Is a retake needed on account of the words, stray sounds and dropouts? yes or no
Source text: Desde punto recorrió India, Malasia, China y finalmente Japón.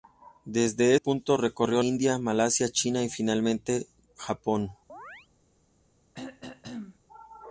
yes